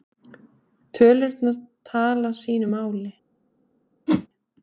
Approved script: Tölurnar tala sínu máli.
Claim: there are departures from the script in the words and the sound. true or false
true